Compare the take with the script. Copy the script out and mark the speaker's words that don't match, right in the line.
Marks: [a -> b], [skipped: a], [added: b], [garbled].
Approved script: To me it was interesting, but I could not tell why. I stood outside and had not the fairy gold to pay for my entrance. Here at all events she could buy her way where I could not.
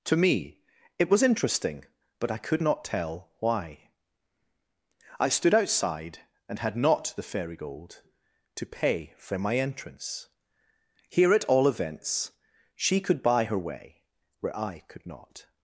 To me it was interesting, but I could not tell why. I stood outside and had not the fairy gold to pay for my entrance. Here at all events she could buy her way where I could not.